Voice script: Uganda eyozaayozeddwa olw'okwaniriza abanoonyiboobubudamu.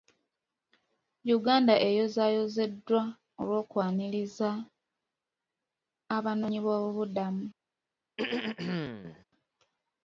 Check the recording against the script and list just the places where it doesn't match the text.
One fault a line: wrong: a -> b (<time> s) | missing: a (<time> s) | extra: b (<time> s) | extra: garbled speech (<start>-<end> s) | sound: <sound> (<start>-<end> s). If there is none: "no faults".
sound: throat clearing (8.2-9.2 s)